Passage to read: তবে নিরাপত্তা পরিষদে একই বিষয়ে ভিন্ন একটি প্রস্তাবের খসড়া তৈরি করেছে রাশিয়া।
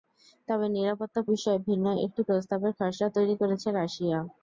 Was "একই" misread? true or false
true